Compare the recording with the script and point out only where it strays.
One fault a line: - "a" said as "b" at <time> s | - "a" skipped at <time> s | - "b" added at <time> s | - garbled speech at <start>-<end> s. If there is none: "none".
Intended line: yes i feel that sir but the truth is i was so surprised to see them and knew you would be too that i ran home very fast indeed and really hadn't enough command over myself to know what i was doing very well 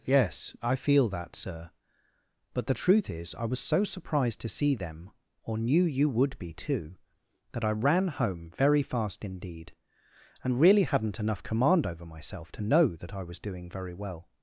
- "and" said as "or" at 5.4 s
- "what" said as "that" at 12.9 s